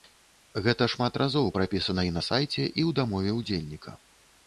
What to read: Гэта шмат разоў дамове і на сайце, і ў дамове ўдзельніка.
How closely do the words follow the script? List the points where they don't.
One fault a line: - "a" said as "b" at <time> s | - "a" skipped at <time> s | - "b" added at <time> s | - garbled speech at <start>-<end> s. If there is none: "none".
- "дамове" said as "прапісана" at 1.6 s